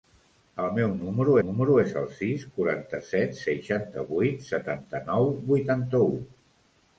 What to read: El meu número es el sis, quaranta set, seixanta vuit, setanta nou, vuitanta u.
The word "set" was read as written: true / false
true